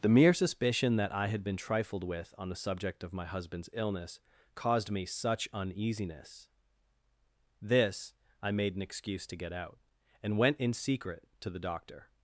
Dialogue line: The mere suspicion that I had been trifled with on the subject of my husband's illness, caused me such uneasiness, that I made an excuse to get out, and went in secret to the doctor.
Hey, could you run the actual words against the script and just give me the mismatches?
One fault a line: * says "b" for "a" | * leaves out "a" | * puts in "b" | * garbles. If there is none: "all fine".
* says "this" for "that"